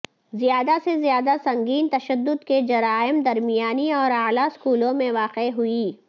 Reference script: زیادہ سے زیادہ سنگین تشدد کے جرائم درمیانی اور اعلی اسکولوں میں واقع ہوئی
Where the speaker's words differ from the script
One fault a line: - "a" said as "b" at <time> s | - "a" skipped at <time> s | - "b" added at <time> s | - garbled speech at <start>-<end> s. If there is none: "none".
none